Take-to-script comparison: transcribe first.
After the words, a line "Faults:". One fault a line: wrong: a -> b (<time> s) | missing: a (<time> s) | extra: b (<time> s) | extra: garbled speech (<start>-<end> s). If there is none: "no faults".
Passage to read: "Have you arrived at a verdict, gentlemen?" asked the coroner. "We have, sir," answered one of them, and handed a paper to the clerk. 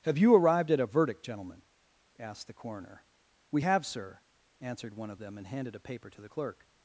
"Have you arrived at a verdict, gentlemen?" asked the coroner. "We have, sir," answered one of them, and handed a paper to the clerk.
Faults:
no faults